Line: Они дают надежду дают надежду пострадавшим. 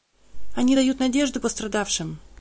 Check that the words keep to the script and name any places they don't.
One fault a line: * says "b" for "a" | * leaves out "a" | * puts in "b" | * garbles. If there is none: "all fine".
* leaves out "дают надежду"